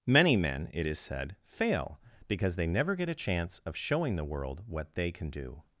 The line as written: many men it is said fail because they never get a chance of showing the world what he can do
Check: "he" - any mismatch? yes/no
yes